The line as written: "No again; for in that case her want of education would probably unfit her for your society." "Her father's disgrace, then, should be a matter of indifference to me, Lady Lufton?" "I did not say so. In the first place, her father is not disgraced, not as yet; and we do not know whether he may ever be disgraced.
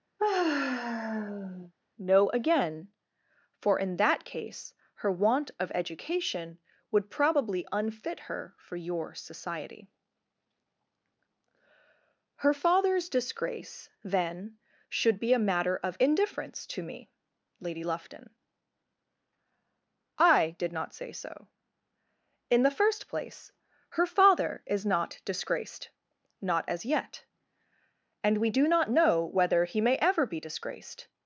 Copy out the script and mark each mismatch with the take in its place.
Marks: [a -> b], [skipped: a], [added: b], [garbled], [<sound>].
[sigh] "No again; for in that case her want of education would probably unfit her for your society." "Her father's disgrace, then, should be a matter of indifference to me, Lady Lufton?" "I did not say so. In the first place, her father is not disgraced, not as yet; and we do not know whether he may ever be disgraced.